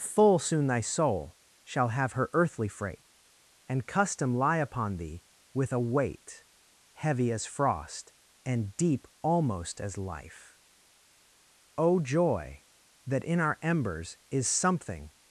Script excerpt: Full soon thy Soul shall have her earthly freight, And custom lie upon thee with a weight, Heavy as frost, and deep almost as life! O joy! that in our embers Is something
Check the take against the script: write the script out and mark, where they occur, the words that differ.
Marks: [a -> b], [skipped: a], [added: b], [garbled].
Full soon thy Soul shall have her earthly freight, And custom lie upon thee with a weight, Heavy as frost, and deep almost as life! O joy! that in our embers Is something